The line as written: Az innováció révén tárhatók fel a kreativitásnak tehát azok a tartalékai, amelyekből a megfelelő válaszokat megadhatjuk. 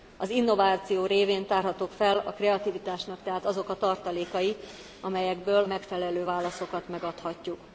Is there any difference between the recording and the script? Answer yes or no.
yes